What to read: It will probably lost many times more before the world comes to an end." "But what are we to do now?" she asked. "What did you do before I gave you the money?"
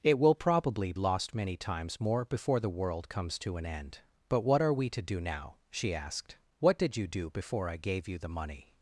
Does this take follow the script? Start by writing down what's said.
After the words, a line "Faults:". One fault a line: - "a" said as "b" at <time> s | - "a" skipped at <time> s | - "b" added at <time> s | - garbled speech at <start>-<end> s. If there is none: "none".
It will probably lost many times more before the world comes to an end." "But what are we to do now?" she asked. "What did you do before I gave you the money?"
Faults:
none